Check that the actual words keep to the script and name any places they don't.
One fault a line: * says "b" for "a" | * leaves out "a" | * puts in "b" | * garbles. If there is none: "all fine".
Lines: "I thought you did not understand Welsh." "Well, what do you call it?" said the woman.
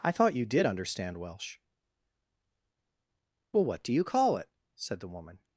* leaves out "not"